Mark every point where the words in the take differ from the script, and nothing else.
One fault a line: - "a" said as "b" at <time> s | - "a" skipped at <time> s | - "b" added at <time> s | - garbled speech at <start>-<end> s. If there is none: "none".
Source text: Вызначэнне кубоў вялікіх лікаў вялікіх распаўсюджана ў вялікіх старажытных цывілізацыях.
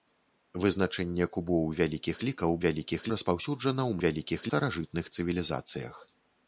none